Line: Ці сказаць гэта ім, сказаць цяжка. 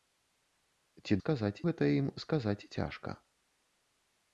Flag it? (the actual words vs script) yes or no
no